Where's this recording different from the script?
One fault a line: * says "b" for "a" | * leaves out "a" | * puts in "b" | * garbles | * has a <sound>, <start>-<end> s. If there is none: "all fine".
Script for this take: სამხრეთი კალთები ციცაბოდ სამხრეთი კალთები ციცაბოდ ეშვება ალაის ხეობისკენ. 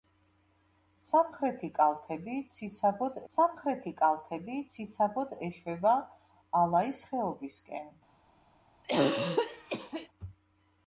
* has a throat clearing, 8.8-10.1 s